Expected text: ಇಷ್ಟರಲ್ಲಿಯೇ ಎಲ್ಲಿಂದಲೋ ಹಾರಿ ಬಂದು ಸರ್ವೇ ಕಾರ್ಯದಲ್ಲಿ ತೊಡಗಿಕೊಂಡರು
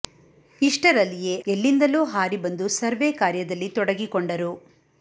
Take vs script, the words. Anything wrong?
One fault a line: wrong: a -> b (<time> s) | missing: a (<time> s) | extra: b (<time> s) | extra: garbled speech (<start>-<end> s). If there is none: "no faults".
no faults